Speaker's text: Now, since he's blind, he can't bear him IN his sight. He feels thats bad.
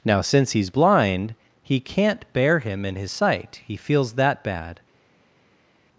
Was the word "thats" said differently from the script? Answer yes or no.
yes